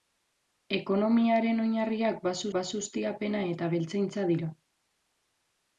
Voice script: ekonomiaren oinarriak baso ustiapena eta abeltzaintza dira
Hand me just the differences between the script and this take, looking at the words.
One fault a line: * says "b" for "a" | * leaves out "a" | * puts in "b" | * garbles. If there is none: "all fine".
* puts in "baso"